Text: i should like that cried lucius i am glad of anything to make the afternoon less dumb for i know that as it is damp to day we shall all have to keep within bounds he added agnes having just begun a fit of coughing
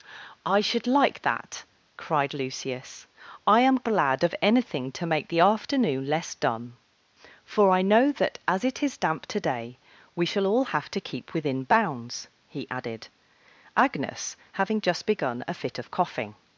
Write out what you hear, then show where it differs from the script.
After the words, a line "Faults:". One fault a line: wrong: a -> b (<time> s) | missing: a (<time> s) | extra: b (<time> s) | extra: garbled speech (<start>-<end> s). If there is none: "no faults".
i should like that cried lucius i am glad of anything to make the afternoon less dumb for i know that as it is damp to day we shall all have to keep within bounds he added agnes having just begun a fit of coughing
Faults:
no faults